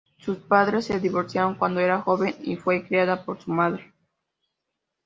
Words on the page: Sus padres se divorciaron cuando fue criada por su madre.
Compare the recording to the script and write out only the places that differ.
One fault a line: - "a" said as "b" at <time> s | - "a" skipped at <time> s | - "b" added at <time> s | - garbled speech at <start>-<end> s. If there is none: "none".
- "era joven y" added at 1.8 s